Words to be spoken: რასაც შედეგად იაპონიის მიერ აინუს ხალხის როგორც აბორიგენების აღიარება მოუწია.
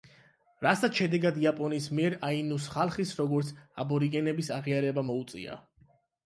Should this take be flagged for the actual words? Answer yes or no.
no